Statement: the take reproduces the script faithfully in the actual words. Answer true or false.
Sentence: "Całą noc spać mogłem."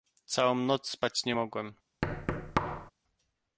false